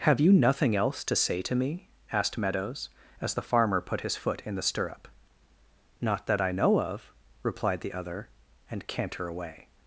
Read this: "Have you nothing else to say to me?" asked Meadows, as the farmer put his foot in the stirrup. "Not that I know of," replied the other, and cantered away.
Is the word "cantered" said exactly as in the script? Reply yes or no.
no